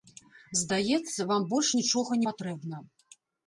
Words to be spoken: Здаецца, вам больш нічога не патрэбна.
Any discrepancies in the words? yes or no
yes